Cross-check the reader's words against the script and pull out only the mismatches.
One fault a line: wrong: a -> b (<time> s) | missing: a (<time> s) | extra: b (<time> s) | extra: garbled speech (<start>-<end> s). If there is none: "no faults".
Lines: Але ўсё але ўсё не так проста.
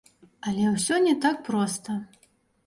missing: але ўсё (1.0 s)